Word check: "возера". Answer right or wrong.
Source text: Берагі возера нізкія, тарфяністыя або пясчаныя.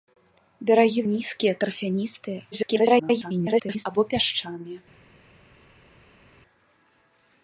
wrong